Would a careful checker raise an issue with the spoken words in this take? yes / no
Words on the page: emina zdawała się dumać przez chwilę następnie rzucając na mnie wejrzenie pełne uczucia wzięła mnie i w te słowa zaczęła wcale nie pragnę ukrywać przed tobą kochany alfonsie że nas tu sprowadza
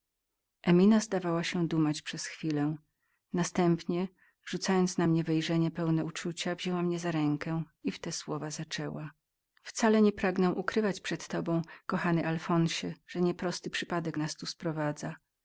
yes